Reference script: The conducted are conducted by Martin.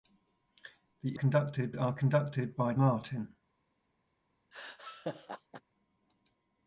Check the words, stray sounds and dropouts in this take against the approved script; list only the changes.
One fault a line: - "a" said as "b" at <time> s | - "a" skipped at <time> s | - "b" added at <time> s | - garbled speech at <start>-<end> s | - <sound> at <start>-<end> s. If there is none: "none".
- laugh at 4.5-5.6 s